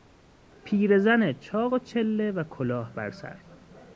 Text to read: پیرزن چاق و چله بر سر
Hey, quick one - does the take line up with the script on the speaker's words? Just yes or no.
no